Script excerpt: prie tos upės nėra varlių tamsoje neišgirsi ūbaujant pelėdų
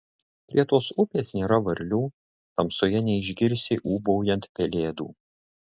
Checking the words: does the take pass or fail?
pass